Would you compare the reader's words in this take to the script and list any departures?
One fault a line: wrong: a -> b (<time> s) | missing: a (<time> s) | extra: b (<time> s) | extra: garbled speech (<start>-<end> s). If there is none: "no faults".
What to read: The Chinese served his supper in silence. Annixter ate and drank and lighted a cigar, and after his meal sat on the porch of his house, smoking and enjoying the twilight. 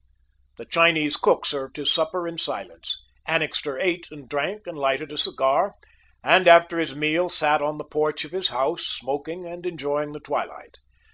extra: cook (1.1 s)